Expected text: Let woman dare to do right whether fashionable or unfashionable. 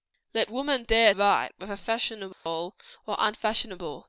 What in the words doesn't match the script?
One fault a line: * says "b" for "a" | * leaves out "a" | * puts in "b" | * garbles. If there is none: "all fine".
* leaves out "to do"